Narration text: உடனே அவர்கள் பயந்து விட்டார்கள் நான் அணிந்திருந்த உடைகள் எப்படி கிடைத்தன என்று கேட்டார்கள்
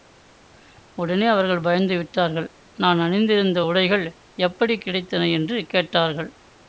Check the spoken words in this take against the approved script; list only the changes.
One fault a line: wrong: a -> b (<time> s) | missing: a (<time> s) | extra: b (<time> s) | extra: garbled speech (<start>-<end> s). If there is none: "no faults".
no faults